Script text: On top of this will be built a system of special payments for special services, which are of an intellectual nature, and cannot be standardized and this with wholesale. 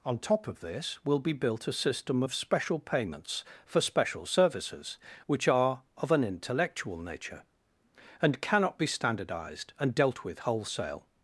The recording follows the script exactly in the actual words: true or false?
false